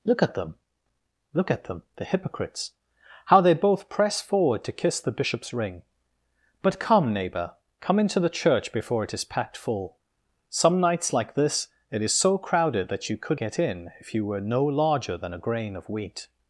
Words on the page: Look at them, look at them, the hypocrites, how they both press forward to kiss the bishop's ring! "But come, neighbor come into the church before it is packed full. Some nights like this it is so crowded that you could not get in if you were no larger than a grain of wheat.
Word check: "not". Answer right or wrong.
wrong